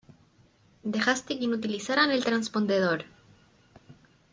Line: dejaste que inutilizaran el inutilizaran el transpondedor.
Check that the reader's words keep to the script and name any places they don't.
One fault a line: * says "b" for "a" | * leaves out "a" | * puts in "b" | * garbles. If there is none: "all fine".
* leaves out "inutilizaran el"